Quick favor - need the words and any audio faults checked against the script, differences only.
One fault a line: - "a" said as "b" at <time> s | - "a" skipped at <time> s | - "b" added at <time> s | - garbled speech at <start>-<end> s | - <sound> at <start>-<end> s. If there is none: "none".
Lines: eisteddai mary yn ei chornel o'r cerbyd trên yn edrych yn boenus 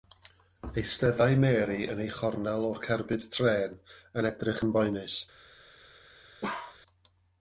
- bark at 6.4-6.8 s